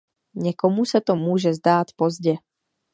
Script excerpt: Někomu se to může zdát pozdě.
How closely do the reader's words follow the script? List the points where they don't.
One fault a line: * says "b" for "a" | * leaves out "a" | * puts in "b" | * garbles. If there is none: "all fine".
all fine